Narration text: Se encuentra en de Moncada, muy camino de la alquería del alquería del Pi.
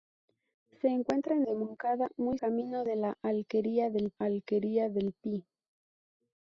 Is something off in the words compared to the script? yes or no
no